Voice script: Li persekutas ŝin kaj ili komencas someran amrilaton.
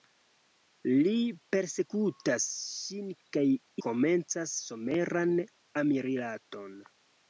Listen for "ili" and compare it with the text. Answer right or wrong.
wrong